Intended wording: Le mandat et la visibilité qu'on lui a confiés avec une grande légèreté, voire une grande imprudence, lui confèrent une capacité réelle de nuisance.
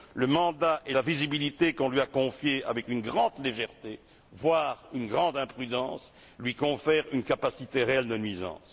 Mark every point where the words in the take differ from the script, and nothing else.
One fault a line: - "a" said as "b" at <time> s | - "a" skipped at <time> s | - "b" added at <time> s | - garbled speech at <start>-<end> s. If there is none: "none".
none